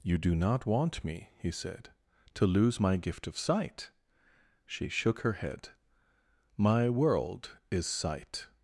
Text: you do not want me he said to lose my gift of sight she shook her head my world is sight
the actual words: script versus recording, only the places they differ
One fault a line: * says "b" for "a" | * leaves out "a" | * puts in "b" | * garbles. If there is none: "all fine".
all fine